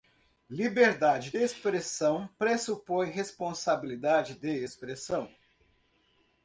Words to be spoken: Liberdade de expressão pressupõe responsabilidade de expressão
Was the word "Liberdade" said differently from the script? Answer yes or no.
no